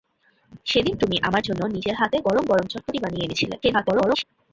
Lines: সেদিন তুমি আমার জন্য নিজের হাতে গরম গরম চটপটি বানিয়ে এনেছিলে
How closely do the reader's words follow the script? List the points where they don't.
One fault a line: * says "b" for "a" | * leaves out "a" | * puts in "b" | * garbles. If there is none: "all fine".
* garbles